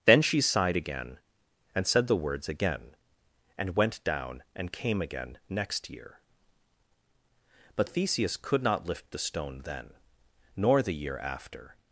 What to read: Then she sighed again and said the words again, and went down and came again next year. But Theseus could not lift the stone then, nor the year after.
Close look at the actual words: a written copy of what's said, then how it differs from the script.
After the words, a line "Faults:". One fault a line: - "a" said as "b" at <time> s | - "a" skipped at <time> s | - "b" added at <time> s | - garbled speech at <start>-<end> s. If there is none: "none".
Then she sighed again and said the words again, and went down and came again next year. But Theseus could not lift the stone then, nor the year after.
Faults:
none